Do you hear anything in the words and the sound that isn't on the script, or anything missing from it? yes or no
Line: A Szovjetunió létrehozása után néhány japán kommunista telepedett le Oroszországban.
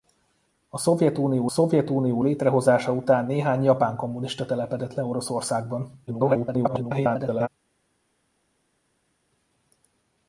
yes